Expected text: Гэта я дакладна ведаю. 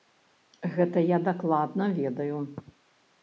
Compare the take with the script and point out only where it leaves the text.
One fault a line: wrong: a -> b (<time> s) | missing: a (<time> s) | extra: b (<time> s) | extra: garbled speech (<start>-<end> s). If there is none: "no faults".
no faults